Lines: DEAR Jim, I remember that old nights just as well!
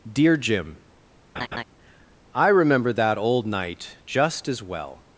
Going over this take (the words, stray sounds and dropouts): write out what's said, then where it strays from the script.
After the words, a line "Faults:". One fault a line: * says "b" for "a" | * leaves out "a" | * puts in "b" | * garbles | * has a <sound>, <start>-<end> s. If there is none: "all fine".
DEAR Jim, I remember that old night just as well!
Faults:
* has a laugh, 1.4-1.6 s
* says "night" for "nights"